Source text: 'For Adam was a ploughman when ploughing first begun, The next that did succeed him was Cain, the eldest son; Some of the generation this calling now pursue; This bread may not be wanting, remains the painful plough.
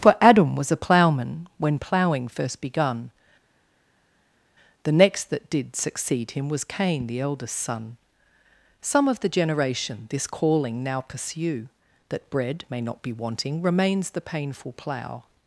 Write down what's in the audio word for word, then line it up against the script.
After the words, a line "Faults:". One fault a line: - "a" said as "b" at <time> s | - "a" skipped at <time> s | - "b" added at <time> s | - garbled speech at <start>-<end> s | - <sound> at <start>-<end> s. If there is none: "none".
'For Adam was a ploughman when ploughing first begun, The next that did succeed him was Cain, the eldest son; Some of the generation this calling now pursue; That bread may not be wanting, remains the painful plough.
Faults:
- "This" said as "That" at 12.1 s